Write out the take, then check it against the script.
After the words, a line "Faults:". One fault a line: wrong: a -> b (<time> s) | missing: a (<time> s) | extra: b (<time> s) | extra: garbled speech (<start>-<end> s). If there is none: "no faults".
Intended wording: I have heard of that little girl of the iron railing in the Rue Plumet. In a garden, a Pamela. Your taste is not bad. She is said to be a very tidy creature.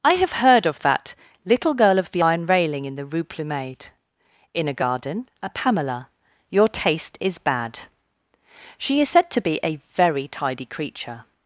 I have heard of that little girl of the iron railing in the Rue Plumet. In a garden, a Pamela. Your taste is bad. She is said to be a very tidy creature.
Faults:
missing: not (7.4 s)